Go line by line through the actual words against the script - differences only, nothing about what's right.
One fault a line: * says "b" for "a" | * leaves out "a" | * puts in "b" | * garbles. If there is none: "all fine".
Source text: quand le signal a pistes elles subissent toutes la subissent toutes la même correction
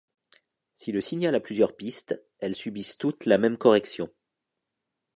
* says "si" for "quand"
* puts in "plusieurs"
* leaves out "subissent toutes la"